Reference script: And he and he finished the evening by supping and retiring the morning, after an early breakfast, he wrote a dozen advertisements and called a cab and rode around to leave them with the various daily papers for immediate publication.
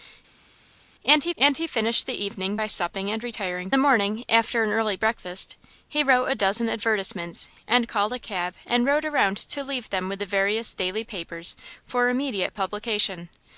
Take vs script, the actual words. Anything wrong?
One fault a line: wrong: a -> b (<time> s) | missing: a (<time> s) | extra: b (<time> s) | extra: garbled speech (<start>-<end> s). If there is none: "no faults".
no faults